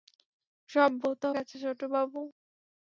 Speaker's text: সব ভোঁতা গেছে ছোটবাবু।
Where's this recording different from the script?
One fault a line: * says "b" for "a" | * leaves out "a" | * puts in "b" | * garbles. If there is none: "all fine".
all fine